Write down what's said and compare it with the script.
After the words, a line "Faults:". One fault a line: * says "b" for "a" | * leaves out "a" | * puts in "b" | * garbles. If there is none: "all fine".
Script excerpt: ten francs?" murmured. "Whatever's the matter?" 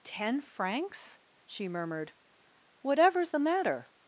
ten francs?" she murmured. "Whatever's the matter?"
Faults:
* puts in "she"